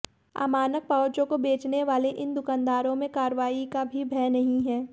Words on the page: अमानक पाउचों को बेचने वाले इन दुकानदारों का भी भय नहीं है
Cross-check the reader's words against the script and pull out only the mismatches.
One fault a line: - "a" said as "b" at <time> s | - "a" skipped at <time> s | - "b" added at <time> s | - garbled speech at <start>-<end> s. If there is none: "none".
- "में कार्रवाई" added at 2.9 s